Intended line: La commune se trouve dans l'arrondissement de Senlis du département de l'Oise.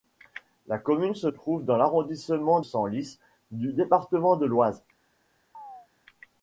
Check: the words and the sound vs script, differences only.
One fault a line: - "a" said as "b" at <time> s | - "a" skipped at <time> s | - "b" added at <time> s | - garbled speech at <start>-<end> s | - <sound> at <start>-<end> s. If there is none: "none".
- "de" skipped at 2.6 s
- chirp at 5.5-5.9 s